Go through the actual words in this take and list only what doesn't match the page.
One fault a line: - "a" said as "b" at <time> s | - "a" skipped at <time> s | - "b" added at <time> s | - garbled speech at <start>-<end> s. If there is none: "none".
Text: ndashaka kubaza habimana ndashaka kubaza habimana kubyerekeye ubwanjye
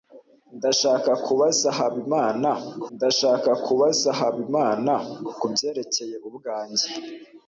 none